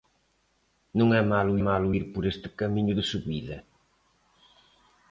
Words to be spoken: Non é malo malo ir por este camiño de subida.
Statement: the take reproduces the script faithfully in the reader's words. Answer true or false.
true